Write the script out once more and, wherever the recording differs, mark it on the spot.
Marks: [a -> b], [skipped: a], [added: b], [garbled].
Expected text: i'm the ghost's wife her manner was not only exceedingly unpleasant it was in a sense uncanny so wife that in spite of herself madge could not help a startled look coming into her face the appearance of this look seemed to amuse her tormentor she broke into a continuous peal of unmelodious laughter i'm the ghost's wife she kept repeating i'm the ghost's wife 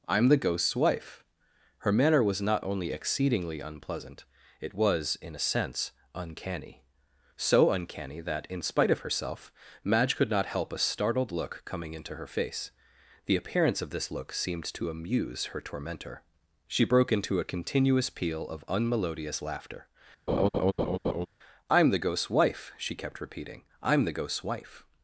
i'm the ghost's wife her manner was not only exceedingly unpleasant it was in a sense uncanny so [wife -> uncanny] that in spite of herself madge could not help a startled look coming into her face the appearance of this look seemed to amuse her tormentor she broke into a continuous peal of unmelodious laughter i'm the ghost's wife she kept repeating i'm the ghost's wife